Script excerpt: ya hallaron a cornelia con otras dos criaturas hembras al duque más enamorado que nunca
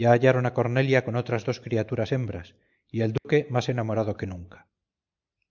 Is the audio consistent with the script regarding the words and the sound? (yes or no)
no